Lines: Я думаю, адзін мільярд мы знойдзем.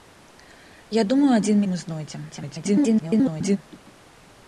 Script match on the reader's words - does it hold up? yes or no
no